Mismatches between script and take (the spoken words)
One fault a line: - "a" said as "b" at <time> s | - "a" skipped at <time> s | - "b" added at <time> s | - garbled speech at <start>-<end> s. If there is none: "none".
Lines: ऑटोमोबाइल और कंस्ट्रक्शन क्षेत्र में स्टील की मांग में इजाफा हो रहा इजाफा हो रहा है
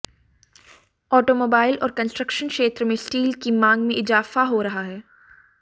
- "इजाफा हो रहा" skipped at 4.8 s